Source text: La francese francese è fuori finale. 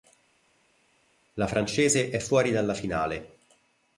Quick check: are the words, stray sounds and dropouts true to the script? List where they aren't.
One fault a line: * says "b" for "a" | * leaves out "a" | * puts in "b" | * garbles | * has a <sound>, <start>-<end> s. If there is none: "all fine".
* leaves out "francese"
* puts in "dalla"